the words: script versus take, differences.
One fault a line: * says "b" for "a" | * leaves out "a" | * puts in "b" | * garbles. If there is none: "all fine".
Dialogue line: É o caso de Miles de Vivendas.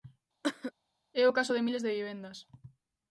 all fine